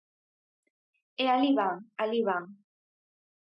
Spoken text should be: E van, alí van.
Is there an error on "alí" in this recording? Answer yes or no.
no